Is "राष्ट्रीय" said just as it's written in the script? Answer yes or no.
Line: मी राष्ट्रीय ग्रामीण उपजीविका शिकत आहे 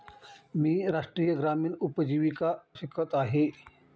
yes